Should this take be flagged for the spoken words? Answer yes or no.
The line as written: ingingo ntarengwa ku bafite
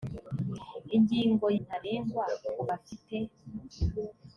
no